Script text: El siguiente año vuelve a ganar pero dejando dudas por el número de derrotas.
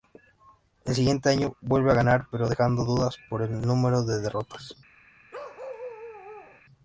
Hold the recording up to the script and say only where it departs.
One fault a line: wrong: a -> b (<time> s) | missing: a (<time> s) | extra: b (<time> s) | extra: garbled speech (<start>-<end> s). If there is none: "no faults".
no faults